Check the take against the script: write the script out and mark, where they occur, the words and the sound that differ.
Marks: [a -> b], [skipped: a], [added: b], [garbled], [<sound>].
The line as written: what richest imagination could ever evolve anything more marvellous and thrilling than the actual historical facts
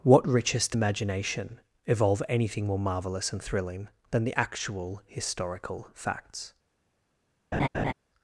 what richest imagination [skipped: could ever] evolve anything more marvellous and thrilling than the actual historical facts [laugh]